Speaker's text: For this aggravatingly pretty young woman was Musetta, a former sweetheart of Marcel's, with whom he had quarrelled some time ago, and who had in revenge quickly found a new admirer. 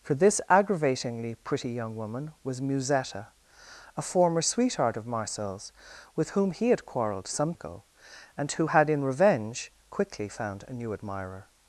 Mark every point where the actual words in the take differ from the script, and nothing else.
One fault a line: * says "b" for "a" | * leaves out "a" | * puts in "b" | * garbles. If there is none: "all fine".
* leaves out "time"